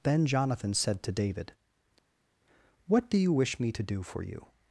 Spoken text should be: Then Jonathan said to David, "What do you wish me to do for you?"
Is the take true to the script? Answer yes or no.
yes